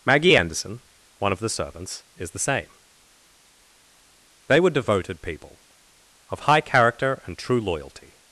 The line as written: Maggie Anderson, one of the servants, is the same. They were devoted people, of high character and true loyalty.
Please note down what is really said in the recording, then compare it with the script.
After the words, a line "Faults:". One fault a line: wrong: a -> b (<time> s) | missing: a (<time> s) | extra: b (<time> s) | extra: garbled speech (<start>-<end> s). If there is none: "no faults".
Maggie Anderson, one of the servants, is the same. They were devoted people, of high character and true loyalty.
Faults:
no faults